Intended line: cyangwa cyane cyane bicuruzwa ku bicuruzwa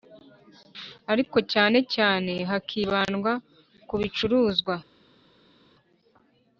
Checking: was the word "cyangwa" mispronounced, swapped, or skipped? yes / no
yes